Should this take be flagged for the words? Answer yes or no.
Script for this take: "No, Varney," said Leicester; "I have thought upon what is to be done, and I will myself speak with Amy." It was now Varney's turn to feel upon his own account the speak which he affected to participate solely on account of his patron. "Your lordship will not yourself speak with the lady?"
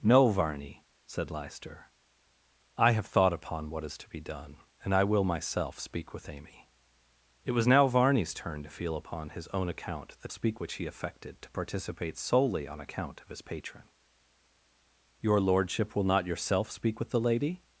no